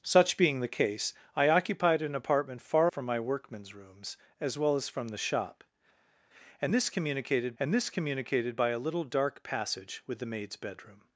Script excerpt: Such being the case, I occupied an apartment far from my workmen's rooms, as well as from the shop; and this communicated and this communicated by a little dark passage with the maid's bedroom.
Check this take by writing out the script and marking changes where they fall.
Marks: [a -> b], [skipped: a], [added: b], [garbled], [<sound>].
Such being the case, I occupied an apartment far from my workmen's rooms, as well as from the shop; and this communicated and this communicated by a little dark passage with the maid's bedroom.